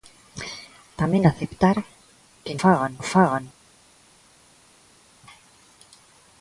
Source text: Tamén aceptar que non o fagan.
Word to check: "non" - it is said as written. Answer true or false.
false